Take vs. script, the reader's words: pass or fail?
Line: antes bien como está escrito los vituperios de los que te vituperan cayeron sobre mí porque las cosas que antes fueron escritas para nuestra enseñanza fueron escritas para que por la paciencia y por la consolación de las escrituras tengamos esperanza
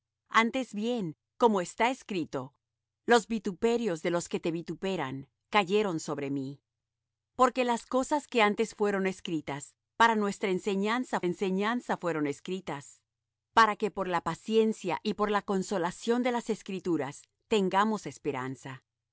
fail